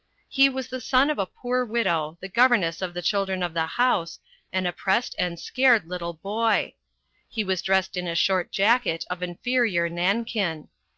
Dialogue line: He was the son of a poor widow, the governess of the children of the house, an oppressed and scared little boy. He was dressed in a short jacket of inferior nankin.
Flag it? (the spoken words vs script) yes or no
no